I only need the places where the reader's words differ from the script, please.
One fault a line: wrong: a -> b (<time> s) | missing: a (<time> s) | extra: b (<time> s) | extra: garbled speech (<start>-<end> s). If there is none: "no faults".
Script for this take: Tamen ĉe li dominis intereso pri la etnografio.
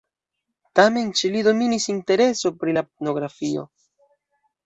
no faults